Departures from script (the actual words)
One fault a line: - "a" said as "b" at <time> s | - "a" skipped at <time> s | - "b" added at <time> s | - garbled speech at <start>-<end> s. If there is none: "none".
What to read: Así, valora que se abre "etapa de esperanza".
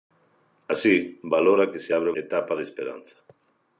none